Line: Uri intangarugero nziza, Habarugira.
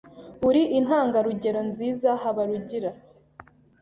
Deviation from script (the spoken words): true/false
false